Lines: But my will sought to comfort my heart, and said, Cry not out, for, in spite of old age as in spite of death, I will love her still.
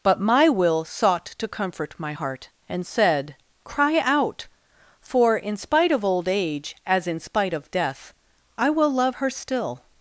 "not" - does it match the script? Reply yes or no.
no